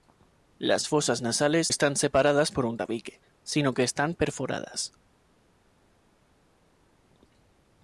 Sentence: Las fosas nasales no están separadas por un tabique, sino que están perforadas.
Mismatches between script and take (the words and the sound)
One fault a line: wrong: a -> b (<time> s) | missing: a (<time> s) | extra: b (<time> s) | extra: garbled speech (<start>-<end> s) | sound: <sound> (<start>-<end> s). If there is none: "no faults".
missing: no (1.7 s)